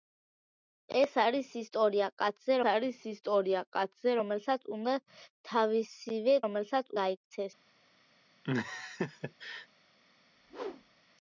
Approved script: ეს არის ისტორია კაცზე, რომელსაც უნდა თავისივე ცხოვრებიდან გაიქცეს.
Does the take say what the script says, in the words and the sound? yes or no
no